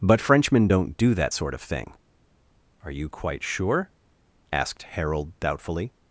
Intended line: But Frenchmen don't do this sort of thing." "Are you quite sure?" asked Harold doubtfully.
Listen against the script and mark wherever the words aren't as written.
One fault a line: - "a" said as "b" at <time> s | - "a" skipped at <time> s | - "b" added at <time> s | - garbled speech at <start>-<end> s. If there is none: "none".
- "this" said as "that" at 1.1 s